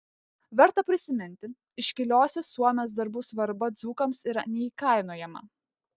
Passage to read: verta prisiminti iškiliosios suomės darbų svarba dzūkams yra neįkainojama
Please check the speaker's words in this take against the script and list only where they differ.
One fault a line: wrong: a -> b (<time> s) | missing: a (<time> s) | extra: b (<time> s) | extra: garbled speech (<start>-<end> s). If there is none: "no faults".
no faults